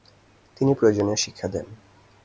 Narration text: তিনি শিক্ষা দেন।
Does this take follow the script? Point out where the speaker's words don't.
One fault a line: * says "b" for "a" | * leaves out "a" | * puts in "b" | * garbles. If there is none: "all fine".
* puts in "প্রয়োজনীয়"